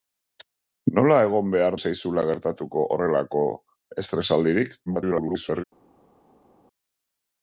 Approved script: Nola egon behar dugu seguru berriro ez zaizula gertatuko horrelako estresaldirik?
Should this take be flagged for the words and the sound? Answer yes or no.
yes